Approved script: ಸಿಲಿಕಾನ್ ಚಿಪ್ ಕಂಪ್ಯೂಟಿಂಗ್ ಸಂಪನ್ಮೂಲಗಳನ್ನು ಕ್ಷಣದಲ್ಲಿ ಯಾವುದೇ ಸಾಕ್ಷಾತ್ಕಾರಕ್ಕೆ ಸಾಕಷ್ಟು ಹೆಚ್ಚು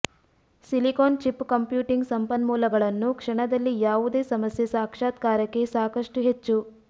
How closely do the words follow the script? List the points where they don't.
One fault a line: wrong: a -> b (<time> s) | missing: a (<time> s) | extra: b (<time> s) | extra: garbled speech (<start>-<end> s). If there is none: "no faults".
extra: ಸಮಸ್ಯೆ (4.3 s)